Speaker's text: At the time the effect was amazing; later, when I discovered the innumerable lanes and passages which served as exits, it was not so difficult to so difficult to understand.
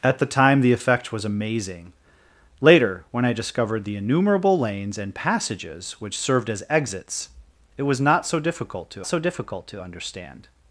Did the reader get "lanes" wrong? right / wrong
right